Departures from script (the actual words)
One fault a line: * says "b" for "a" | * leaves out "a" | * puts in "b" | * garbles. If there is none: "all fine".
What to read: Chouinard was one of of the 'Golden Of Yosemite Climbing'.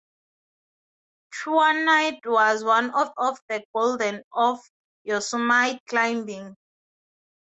all fine